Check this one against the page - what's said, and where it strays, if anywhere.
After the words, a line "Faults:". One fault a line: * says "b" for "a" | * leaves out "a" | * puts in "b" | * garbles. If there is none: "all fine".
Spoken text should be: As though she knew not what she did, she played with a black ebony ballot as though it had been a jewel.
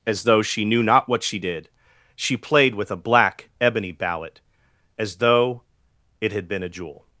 As though she knew not what she did, she played with a black ebony ballot as though it had been a jewel.
Faults:
all fine